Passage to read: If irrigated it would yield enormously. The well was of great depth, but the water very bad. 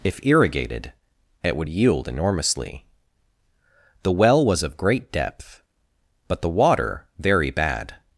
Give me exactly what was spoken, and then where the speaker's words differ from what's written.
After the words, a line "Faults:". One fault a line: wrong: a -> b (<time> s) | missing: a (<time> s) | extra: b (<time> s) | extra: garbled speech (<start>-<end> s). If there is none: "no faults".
If irrigated it would yield enormously. The well was of great depth, but the water very bad.
Faults:
no faults